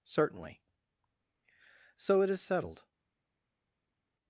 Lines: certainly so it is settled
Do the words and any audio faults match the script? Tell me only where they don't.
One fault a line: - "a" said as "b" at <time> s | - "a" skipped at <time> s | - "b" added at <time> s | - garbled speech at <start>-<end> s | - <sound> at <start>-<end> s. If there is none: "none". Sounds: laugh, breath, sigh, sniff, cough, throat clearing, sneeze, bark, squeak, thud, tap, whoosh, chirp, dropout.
none